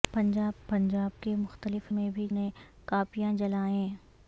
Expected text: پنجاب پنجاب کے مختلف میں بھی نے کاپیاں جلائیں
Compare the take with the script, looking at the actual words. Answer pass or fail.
pass